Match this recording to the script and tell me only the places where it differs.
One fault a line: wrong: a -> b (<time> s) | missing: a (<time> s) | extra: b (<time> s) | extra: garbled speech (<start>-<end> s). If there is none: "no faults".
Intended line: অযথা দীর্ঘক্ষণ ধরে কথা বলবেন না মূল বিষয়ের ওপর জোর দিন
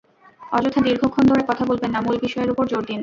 no faults